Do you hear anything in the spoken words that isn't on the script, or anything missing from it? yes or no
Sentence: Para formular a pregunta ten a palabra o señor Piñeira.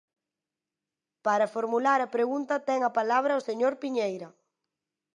no